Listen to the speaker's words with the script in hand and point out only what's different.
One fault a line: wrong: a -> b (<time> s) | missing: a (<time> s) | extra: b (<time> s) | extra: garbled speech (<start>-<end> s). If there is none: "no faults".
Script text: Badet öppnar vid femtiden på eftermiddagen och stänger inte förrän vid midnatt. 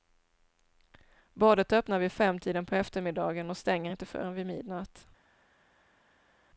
no faults